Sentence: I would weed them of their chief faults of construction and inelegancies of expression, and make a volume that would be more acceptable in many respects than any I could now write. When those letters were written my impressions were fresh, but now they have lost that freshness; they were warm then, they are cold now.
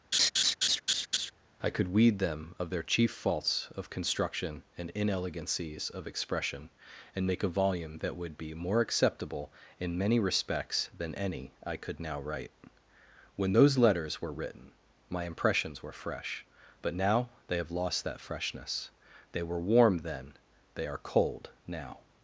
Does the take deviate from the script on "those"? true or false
false